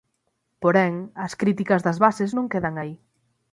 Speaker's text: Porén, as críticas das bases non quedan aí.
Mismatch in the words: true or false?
false